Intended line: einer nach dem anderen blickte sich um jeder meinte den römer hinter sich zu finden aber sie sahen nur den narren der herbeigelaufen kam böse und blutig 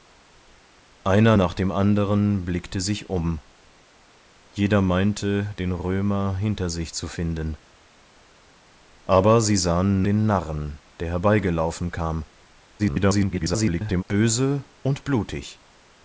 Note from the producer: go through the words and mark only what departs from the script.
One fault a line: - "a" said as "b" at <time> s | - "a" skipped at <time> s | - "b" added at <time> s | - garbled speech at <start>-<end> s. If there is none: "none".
- "nur" skipped at 10.0 s
- garbled speech at 12.8-14.0 s